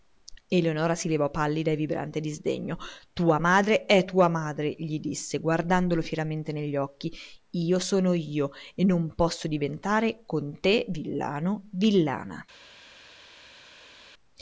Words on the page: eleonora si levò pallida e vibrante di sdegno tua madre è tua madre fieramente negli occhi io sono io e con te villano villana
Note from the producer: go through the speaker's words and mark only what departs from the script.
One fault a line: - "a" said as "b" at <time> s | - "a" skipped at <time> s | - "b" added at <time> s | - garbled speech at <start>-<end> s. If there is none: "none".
- "gli disse guardandolo" added at 4.8 s
- "non posso diventare" added at 8.9 s